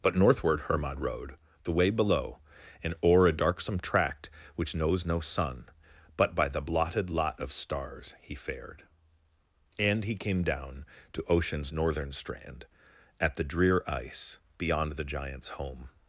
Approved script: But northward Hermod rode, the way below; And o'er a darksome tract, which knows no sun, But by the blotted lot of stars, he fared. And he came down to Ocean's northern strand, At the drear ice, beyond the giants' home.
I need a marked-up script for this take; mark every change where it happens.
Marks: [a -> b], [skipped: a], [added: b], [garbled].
But northward Hermod rode, the way below; And o'er a darksome tract, which knows no sun, But by the blotted lot of stars, he fared. And he came down to Ocean's northern strand, At the drear ice, beyond the giants' home.